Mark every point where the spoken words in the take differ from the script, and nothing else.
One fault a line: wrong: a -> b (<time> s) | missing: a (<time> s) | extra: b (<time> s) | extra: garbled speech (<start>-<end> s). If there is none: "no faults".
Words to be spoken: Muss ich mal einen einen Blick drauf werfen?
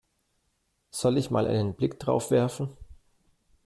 wrong: Muss -> Soll (0.9 s)
missing: einen (1.8 s)